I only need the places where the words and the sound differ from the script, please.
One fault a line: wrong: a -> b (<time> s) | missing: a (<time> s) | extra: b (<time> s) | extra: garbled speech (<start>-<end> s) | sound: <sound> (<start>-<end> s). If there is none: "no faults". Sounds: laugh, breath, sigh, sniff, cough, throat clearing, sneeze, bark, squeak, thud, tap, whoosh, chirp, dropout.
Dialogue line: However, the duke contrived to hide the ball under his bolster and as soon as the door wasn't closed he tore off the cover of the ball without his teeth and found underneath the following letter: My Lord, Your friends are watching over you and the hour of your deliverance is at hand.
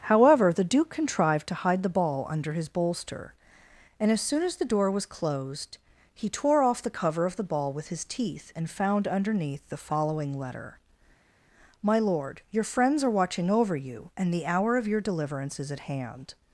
wrong: wasn't -> was (4.9 s)
wrong: without -> with (7.7 s)